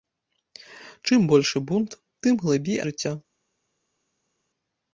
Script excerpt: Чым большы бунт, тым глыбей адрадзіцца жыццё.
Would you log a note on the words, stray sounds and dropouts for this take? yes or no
yes